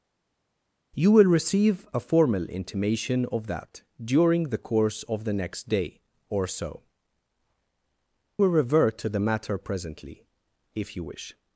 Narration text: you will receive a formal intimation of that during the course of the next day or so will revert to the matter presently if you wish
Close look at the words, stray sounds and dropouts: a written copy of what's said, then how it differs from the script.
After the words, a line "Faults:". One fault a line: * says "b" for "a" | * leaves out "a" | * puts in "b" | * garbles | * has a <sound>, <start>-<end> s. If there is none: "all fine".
you will receive a formal intimation of that during the course of the next day or so will revert to the matter presently if you wish
Faults:
all fine